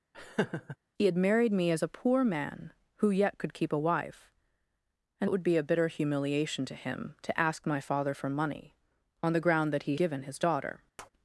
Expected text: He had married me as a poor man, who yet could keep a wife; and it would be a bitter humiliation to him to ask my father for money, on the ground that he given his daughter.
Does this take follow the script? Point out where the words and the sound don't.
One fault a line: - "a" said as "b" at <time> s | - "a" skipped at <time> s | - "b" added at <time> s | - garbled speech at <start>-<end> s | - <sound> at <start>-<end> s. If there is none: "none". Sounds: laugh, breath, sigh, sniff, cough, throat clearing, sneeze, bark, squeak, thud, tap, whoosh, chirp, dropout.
- laugh at 0.1-0.8 s
- tap at 11.0-11.1 s